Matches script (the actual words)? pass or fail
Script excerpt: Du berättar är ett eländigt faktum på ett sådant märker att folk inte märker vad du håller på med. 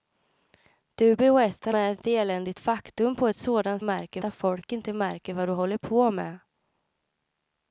pass